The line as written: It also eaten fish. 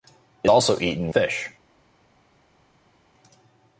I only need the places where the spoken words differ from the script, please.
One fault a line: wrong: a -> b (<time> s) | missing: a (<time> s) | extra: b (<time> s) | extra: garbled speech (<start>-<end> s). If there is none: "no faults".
no faults